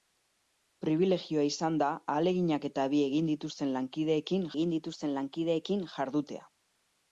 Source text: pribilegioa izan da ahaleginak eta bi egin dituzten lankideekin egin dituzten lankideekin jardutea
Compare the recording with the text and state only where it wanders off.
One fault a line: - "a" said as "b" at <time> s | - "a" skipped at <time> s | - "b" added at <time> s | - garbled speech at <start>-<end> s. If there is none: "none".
none